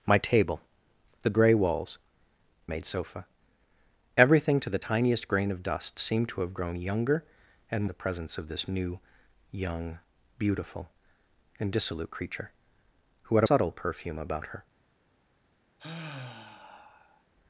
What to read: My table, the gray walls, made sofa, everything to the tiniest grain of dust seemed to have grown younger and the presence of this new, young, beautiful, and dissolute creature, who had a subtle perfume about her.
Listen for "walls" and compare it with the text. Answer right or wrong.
right